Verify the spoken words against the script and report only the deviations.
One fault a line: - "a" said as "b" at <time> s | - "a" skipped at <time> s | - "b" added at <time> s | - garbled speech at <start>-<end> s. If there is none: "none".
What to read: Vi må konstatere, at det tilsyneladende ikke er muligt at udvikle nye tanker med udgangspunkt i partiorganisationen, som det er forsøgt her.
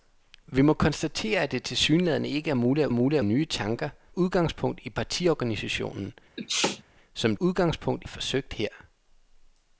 - "udvikle" said as "muligt" at 2.9 s
- "med" skipped at 3.9 s
- "det" said as "udgangspunkt" at 7.4 s